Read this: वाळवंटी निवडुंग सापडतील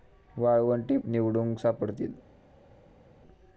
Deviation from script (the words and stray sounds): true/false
false